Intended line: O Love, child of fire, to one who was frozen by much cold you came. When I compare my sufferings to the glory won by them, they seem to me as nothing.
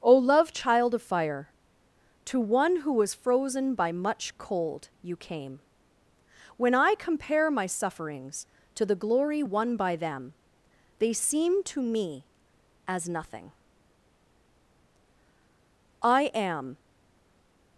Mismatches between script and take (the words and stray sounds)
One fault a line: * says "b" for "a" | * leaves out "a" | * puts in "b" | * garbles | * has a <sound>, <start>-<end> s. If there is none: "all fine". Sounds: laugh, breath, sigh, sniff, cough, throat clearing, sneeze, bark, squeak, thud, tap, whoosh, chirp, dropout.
* puts in "I am"